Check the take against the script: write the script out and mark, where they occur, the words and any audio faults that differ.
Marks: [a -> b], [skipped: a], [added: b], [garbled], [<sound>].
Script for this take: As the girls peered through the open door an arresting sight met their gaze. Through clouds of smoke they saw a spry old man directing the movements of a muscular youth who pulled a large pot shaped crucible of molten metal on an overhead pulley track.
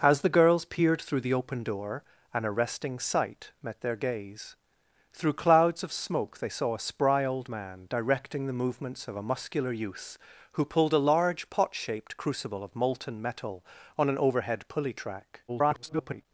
As the girls peered through the open door an arresting sight met their gaze. Through clouds of smoke they saw a spry old man directing the movements of a muscular youth who pulled a large pot shaped crucible of molten metal on an overhead pulley track. [garbled]